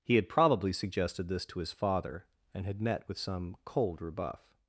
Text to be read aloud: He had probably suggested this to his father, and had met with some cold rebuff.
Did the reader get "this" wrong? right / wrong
right